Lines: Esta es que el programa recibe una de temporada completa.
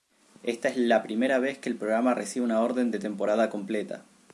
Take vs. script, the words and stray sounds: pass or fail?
fail